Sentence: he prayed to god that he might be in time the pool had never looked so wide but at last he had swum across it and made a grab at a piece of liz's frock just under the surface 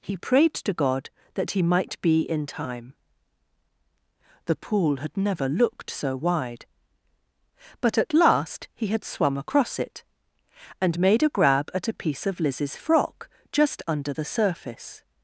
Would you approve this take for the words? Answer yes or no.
yes